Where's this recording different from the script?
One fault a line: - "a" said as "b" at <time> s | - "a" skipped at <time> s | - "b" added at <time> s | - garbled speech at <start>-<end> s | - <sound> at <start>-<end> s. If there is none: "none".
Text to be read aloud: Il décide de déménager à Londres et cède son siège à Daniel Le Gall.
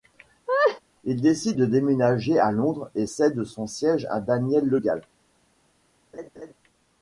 - laugh at 0.5-0.8 s
- laugh at 6.1-6.5 s